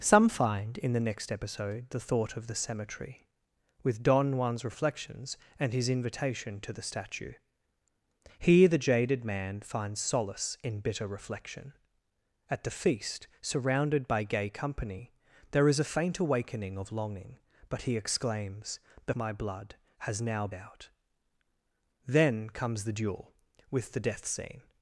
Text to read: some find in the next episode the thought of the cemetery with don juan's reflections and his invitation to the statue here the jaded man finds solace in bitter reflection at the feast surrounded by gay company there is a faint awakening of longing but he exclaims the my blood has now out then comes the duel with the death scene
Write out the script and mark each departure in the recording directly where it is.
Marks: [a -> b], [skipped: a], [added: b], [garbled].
some find in the next episode the thought of the cemetery with don juan's reflections and his invitation to the statue here the jaded man finds solace in bitter reflection at the feast surrounded by gay company there is a faint awakening of longing but he exclaims the my blood has now out then comes the duel with the death scene